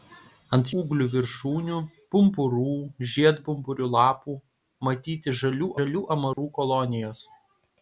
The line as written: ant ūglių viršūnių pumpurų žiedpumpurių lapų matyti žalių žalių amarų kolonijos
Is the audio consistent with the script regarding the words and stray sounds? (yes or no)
no